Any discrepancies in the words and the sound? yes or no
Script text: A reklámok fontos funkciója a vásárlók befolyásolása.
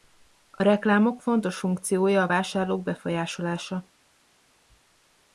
no